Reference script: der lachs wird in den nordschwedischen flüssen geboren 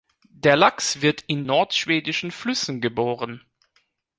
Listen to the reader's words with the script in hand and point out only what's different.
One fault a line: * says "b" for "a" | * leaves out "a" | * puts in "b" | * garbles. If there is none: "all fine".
* leaves out "den"